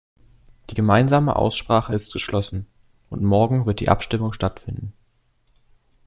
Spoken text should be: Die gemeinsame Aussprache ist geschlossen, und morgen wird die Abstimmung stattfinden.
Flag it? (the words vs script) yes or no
no